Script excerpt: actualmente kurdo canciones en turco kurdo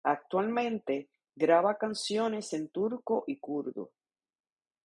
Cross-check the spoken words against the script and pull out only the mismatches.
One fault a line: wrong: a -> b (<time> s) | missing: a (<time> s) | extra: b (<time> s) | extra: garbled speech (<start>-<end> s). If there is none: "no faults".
wrong: kurdo -> graba (1.4 s)
extra: y (3.3 s)